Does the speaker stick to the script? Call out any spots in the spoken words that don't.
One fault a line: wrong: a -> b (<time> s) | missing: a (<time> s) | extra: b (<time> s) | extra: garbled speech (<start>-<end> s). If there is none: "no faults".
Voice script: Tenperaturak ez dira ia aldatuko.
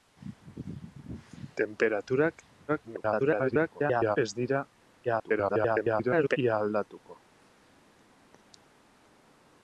extra: garbled speech (2.7-4.2 s)
extra: garbled speech (5.0-6.4 s)